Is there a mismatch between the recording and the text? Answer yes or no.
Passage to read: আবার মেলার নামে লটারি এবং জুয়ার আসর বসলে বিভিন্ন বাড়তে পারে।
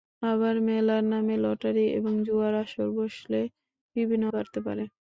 no